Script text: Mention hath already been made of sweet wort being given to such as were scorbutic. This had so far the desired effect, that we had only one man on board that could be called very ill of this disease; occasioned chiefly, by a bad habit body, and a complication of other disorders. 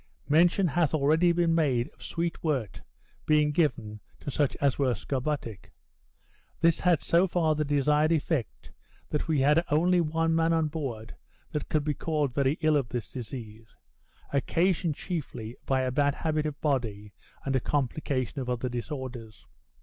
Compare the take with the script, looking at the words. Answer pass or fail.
fail